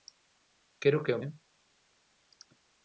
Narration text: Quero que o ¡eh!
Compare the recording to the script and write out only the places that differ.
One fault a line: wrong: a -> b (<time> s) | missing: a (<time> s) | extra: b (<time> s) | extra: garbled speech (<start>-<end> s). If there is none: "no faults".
no faults